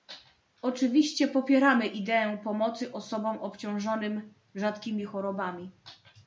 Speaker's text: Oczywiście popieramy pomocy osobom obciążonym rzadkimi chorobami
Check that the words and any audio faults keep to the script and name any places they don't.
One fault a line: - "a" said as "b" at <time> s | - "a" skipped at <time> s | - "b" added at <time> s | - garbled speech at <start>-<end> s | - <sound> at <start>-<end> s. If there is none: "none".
- "ideę" added at 1.8 s